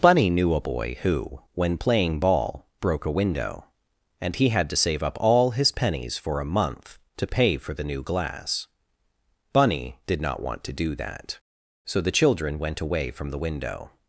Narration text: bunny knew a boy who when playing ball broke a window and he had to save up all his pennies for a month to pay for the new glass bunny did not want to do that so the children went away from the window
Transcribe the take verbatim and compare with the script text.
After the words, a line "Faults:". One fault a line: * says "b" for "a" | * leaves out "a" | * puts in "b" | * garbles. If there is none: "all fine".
bunny knew a boy who when playing ball broke a window and he had to save up all his pennies for a month to pay for the new glass bunny did not want to do that so the children went away from the window
Faults:
all fine